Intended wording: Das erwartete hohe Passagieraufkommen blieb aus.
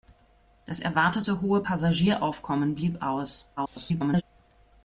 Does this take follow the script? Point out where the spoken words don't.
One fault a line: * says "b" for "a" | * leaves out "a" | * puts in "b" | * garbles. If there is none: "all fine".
* garbles